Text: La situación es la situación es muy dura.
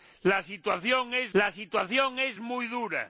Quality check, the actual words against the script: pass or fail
pass